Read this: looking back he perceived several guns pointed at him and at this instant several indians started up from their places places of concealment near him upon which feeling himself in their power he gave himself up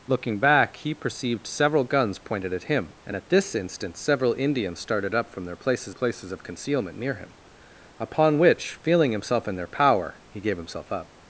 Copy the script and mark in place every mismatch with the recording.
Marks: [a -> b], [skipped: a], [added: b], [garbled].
looking back he perceived several guns pointed at him and at this instant several indians started up from their places places of concealment near him upon which feeling himself in their power he gave himself up